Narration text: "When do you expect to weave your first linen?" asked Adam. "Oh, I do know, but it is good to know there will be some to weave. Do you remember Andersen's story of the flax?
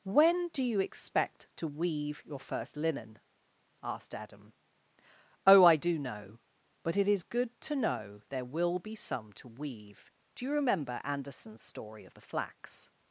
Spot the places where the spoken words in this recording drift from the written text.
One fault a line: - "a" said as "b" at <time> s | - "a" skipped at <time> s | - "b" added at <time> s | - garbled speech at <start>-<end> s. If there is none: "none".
none